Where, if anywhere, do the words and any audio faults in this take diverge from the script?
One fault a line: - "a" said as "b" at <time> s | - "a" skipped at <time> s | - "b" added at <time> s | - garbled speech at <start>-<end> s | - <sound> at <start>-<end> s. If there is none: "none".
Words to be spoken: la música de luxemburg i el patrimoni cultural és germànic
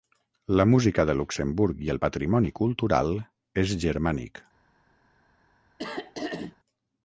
- throat clearing at 5.8-6.6 s